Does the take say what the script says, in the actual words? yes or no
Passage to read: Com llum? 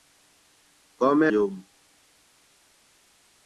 yes